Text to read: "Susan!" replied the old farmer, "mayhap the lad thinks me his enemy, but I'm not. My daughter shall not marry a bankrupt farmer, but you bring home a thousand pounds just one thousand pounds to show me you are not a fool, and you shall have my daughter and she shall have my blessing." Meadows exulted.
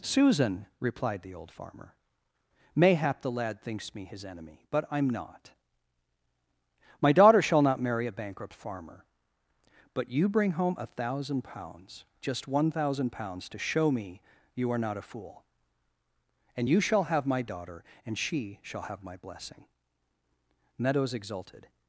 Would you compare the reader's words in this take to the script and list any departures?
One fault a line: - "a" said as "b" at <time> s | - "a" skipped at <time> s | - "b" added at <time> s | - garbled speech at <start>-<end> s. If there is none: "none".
none